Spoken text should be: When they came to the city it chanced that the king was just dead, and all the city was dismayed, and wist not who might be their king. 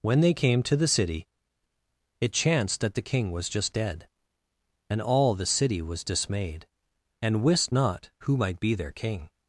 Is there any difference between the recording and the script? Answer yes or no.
no